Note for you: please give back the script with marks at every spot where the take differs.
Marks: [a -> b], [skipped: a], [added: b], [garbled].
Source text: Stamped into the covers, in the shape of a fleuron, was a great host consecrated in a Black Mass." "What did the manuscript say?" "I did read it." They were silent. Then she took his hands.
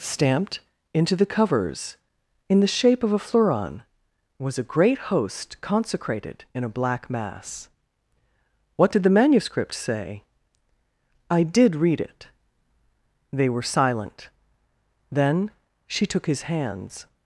Stamped into the covers, in the shape of a fleuron, was a great host consecrated in a Black Mass." "What did the manuscript say?" "I did read it." They were silent. Then she took his hands.